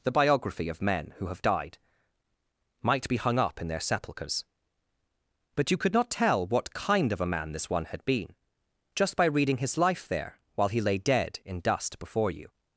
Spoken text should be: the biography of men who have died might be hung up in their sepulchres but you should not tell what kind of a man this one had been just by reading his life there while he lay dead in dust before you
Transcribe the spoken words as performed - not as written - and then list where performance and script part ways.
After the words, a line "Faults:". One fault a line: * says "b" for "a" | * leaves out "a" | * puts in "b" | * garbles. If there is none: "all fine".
the biography of men who have died might be hung up in their sepulchres but you could not tell what kind of a man this one had been just by reading his life there while he lay dead in dust before you
Faults:
* says "could" for "should"